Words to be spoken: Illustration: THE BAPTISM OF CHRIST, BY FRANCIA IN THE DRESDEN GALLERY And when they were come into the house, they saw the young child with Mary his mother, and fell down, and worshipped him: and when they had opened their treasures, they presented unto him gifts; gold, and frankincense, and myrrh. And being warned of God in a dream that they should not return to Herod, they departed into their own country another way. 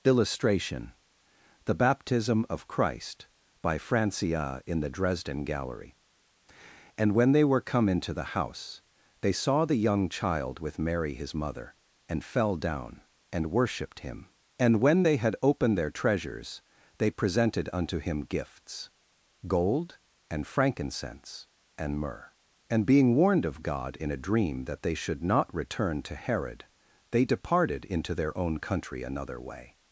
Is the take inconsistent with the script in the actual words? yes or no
no